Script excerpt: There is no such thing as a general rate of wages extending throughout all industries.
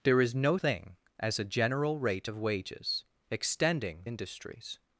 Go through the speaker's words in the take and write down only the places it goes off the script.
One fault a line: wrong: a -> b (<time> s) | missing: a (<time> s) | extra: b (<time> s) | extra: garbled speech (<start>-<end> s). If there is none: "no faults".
missing: such (0.6 s)
missing: throughout all (4.0 s)